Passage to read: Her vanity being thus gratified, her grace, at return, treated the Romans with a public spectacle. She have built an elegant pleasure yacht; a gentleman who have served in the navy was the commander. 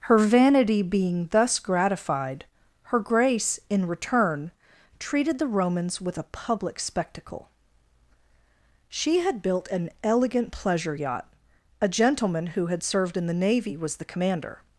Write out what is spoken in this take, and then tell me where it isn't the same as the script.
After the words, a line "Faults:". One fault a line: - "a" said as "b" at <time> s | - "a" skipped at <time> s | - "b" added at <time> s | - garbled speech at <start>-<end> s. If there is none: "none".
Her vanity being thus gratified, her grace, in return, treated the Romans with a public spectacle. She had built an elegant pleasure yacht; a gentleman who had served in the navy was the commander.
Faults:
- "at" said as "in" at 3.7 s
- "have" said as "had" at 9.2 s
- "have" said as "had" at 12.7 s